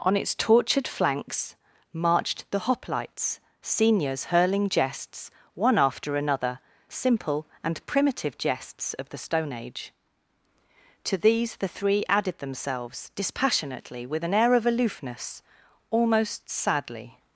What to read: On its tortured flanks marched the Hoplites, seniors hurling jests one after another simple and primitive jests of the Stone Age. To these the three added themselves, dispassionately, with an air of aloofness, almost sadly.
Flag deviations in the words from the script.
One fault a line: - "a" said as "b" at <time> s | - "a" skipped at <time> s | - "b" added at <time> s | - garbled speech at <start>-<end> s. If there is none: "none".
none